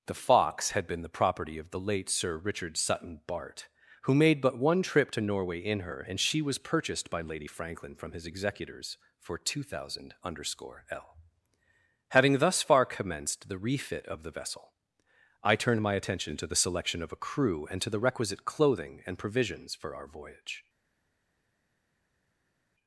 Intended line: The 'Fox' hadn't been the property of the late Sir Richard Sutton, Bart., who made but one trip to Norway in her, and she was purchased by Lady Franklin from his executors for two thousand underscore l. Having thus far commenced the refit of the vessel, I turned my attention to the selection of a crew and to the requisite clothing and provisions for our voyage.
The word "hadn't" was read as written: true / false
false